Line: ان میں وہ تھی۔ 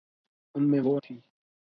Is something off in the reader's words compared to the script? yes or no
no